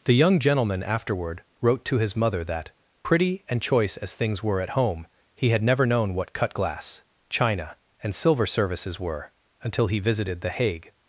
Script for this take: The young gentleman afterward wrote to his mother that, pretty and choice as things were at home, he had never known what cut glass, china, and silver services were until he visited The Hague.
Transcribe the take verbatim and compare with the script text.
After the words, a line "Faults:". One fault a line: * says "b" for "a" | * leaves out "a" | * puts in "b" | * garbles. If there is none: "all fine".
The young gentleman afterward wrote to his mother that, pretty and choice as things were at home, he had never known what cut glass, china, and silver services were until he visited The Hague.
Faults:
all fine